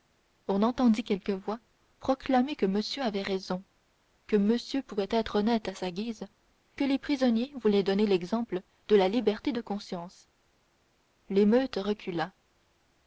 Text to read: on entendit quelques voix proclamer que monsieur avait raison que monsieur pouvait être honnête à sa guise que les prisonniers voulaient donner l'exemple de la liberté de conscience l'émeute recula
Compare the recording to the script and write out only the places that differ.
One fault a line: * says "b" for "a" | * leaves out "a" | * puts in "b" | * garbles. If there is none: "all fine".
all fine